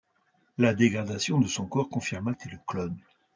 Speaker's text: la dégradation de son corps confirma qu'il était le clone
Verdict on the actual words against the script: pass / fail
fail